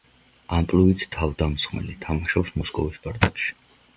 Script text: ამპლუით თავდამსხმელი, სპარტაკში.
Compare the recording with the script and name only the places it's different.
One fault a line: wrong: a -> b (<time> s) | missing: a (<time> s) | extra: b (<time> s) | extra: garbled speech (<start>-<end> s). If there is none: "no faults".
extra: თამაშობს მოსკოვის (2.0 s)